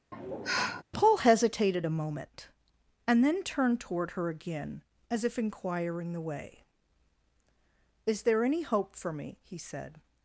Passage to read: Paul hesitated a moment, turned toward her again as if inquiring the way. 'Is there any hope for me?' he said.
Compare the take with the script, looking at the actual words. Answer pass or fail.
fail